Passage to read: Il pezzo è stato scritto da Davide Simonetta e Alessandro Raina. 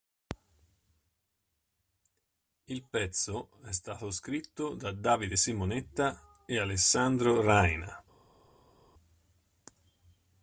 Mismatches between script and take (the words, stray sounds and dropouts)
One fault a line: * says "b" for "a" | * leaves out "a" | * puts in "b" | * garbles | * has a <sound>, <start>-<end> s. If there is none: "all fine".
all fine